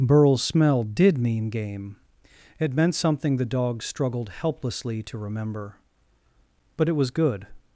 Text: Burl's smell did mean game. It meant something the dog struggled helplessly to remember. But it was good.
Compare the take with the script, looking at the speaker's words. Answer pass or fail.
pass